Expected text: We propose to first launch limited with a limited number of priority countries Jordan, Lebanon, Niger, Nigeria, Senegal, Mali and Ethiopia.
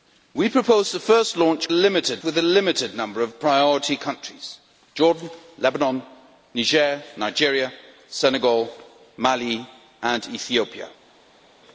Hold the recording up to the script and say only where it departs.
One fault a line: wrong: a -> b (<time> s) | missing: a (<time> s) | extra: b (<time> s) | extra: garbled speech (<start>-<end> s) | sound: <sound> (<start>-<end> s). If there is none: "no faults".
no faults